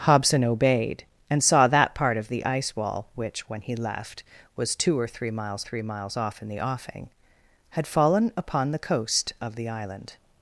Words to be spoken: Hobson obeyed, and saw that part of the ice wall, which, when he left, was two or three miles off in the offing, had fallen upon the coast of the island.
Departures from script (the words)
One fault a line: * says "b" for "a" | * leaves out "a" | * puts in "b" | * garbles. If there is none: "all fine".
* puts in "three miles"